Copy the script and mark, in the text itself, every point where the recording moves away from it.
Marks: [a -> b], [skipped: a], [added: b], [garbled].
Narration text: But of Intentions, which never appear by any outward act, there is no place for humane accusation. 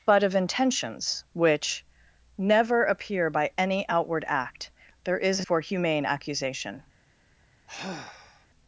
But of Intentions, which never appear by any outward act, there is [skipped: no place] for humane accusation.